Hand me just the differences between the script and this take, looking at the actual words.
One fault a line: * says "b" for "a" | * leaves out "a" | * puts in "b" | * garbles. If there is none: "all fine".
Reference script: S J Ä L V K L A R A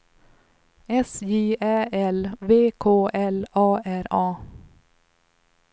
all fine